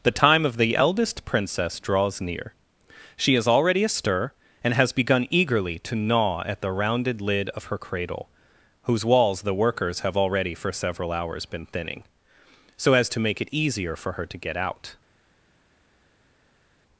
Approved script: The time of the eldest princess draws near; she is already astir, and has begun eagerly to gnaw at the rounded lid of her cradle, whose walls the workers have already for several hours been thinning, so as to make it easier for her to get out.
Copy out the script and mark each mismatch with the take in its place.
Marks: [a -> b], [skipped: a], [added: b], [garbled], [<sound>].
The time of the eldest princess draws near; she is already astir, and has begun eagerly to gnaw at the rounded lid of her cradle, whose walls the workers have already for several hours been thinning, so as to make it easier for her to get out.